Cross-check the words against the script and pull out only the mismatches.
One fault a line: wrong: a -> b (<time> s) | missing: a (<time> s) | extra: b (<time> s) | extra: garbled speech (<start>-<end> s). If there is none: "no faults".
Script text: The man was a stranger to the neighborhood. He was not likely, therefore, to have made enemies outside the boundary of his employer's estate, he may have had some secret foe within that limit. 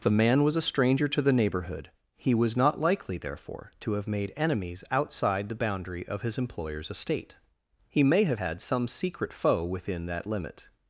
no faults